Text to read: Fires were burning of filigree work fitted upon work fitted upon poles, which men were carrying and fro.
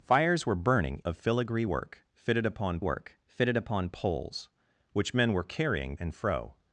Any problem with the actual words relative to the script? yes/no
no